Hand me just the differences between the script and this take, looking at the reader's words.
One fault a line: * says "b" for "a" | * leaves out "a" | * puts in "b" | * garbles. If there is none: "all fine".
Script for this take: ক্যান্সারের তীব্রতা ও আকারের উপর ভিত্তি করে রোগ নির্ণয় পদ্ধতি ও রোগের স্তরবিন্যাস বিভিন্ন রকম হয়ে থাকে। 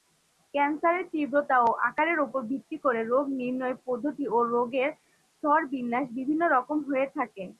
all fine